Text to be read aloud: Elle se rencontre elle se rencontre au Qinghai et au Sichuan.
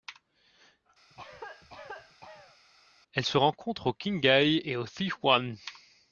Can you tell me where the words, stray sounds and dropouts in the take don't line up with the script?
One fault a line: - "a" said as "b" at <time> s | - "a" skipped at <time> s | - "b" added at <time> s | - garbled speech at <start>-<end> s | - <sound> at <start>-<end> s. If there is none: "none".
- cough at 1.1-2.6 s
- "elle se rencontre" skipped at 3.9 s